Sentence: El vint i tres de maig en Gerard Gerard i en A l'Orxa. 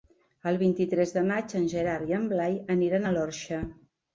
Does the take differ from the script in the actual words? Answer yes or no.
yes